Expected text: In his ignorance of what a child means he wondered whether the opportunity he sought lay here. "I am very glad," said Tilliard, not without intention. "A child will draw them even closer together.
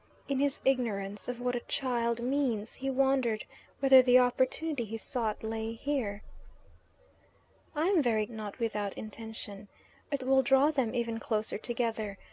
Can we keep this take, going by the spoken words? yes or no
no